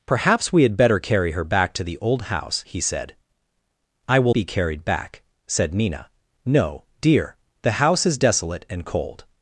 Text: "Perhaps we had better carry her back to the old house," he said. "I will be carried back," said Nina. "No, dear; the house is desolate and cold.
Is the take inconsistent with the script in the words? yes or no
no